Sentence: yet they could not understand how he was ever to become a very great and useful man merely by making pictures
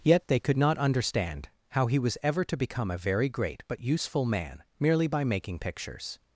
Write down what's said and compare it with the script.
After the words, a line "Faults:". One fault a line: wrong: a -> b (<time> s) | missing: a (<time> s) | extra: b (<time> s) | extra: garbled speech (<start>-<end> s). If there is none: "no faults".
yet they could not understand how he was ever to become a very great but useful man merely by making pictures
Faults:
wrong: and -> but (3.7 s)